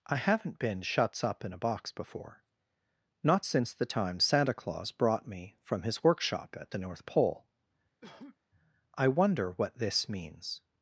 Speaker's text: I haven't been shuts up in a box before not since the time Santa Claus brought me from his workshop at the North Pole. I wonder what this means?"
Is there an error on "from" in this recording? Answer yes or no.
no